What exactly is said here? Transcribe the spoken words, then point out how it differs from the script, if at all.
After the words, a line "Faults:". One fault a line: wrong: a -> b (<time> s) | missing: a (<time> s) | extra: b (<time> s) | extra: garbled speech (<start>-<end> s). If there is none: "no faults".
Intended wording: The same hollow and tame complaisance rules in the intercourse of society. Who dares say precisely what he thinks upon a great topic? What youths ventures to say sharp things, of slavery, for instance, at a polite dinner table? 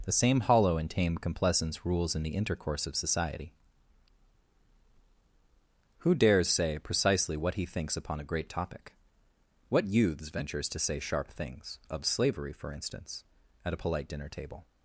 The same hollow and tame complaisance rules in the intercourse of society. Who dares say precisely what he thinks upon a great topic? What youths ventures to say sharp things, of slavery, for instance, at a polite dinner table?
Faults:
no faults